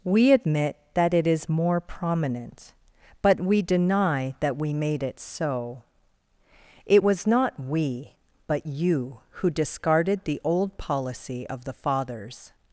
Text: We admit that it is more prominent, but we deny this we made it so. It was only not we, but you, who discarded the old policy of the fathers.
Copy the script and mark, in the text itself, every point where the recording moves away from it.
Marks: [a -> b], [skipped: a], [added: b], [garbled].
We admit that it is more prominent, but we deny [this -> that] we made it so. It was [skipped: only] not we, but you, who discarded the old policy of the fathers.